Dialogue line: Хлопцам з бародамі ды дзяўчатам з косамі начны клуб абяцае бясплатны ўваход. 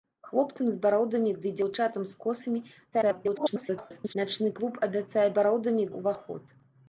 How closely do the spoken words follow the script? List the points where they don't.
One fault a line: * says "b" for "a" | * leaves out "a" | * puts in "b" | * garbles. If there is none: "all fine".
* garbles
* says "бародамі" for "бясплатны"